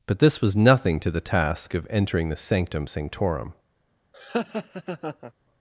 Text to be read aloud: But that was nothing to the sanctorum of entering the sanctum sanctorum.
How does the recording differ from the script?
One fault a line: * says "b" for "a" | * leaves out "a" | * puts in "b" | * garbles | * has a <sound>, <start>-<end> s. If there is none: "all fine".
* says "this" for "that"
* says "task" for "sanctorum"
* has a laugh, 4.1-5.3 s